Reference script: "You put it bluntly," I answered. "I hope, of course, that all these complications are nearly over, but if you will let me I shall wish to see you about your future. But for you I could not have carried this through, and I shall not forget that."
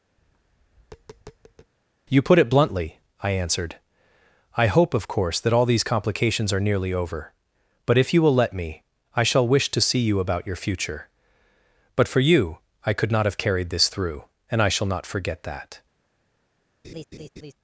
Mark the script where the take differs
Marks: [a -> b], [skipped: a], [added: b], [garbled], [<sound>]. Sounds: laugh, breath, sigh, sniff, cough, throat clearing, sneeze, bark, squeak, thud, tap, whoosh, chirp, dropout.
[tap] "You put it bluntly," I answered. "I hope, of course, that all these complications are nearly over, but if you will let me I shall wish to see you about your future. But for you I could not have carried this through, and I shall not forget that." [laugh]